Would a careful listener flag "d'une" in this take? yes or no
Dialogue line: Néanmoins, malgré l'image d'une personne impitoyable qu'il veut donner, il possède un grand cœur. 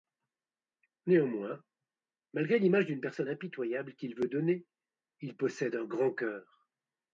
no